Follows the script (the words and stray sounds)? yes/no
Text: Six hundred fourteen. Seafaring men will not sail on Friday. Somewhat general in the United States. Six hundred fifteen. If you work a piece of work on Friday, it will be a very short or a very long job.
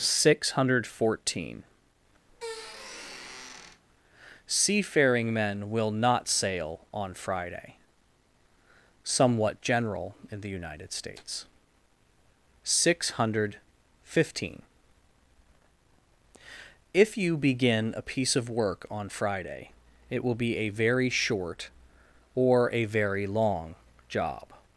no